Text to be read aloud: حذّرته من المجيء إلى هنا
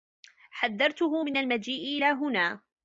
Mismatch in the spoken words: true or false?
false